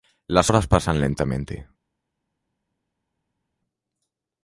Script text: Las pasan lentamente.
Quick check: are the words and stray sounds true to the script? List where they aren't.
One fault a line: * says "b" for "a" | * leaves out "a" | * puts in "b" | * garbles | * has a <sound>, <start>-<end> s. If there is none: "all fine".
* puts in "horas"